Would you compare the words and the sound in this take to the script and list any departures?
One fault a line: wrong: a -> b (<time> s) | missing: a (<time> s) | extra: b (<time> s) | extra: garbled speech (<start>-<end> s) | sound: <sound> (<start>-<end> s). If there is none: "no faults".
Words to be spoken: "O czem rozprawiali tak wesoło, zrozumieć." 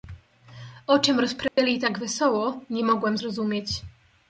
sound: dropout (1.5-1.6 s)
extra: nie mogłem (2.7 s)